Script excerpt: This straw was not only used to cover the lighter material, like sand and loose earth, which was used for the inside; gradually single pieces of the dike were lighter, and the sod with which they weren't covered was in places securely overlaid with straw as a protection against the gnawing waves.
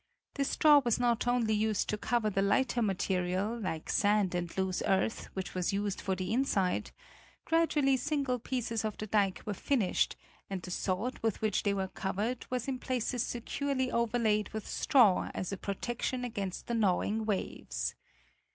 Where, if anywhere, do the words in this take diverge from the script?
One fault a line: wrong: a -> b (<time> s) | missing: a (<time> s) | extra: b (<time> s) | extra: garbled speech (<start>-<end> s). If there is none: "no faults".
wrong: lighter -> finished (9.5 s)
wrong: weren't -> were (11.8 s)